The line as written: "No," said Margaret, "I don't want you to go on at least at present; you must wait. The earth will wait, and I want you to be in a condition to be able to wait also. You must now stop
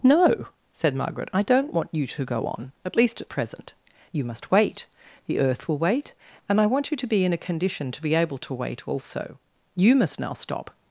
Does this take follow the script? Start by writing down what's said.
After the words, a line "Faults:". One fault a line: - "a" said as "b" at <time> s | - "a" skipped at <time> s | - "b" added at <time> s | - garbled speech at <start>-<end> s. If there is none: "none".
"No," said Margaret, "I don't want you to go on at least at present; you must wait. The earth will wait, and I want you to be in a condition to be able to wait also. You must now stop
Faults:
none